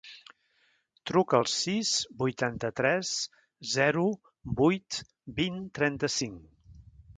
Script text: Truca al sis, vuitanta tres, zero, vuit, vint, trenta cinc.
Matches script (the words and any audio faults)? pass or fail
pass